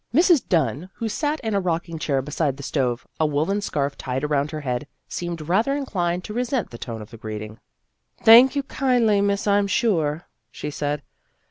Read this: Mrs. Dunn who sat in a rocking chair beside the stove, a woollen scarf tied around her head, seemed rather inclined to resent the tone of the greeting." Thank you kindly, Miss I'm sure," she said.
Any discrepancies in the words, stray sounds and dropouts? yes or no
no